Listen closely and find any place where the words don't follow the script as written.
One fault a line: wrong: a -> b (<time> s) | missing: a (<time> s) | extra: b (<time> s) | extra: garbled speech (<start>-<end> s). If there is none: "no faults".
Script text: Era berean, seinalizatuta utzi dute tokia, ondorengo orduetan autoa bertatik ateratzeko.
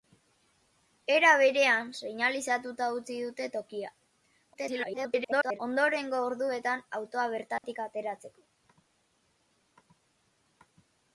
extra: garbled speech (4.5-5.6 s)